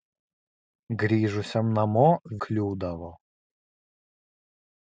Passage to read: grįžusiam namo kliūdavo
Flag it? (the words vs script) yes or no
no